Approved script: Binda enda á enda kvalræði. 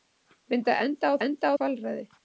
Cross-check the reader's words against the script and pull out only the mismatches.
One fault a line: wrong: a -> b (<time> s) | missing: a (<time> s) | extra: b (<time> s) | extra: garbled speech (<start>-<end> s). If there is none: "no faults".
no faults